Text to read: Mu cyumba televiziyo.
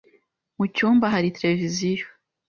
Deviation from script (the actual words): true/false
true